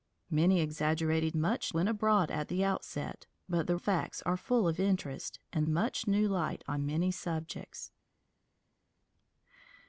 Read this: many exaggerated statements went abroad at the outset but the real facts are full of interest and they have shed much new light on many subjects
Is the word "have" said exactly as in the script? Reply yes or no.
no